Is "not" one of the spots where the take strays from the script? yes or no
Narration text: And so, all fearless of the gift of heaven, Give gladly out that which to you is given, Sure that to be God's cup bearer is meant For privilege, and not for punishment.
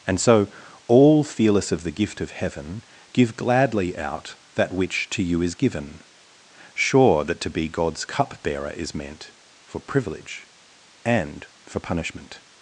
yes